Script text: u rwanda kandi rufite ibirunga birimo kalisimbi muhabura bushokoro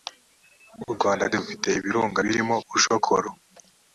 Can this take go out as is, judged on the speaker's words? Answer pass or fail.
fail